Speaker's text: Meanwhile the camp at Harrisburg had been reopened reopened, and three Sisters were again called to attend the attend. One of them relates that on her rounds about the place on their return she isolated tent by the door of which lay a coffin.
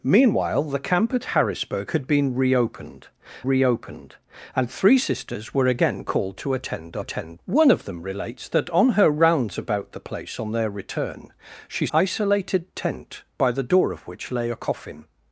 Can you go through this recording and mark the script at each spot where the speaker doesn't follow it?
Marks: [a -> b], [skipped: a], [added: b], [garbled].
Meanwhile the camp at Harrisburg had been reopened reopened, and three Sisters were again called to attend the attend. One of them relates that on her rounds about the place on their return she isolated tent by the door of which lay a coffin.